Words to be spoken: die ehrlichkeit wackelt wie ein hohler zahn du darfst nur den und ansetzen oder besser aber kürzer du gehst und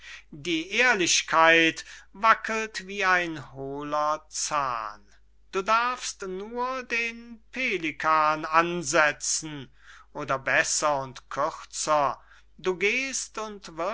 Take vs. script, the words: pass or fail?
fail